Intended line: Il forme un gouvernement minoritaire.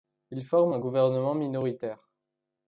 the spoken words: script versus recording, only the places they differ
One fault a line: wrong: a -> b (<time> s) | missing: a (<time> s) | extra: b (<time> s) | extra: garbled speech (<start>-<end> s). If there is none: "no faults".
no faults